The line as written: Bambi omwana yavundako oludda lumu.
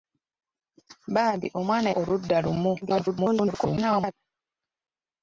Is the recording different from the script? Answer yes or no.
yes